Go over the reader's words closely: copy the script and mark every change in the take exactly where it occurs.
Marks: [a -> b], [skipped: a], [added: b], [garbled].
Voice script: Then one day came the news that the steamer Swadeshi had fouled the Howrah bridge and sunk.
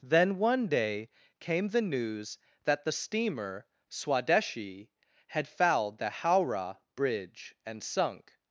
Then one day came the news that the steamer Swadeshi had fouled the Howrah bridge and sunk.